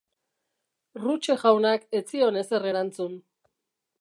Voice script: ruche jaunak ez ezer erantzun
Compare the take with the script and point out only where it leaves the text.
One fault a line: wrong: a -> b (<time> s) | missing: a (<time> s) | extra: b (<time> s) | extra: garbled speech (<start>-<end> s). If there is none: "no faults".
extra: zion (2.1 s)